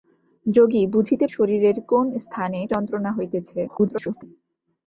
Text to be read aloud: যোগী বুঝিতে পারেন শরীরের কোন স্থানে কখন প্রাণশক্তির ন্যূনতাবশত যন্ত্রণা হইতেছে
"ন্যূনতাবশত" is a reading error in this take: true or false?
true